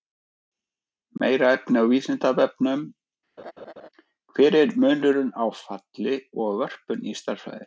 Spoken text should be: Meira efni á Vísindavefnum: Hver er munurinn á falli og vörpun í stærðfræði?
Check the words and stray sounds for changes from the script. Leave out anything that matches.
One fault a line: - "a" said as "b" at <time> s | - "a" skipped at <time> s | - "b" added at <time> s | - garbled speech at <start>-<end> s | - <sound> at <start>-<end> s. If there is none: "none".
- laugh at 3.4-3.9 s